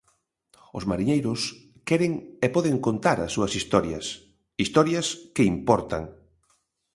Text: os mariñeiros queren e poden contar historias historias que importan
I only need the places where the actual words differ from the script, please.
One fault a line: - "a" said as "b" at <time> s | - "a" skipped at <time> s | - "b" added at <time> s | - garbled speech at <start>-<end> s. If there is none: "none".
- "as súas" added at 3.2 s